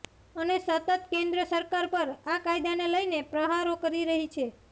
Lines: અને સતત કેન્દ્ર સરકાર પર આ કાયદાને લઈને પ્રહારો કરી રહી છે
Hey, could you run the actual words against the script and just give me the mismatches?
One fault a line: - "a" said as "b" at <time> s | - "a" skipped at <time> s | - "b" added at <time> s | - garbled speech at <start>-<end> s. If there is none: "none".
none